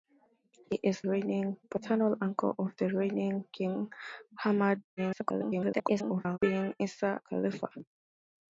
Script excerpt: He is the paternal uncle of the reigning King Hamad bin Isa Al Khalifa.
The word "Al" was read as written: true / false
false